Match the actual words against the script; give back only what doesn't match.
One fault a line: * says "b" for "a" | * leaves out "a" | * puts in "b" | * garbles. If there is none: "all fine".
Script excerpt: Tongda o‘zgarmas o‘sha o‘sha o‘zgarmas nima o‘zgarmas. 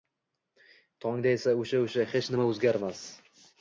* says "esa" for "o‘zgarmas"
* says "hech" for "o‘zgarmas"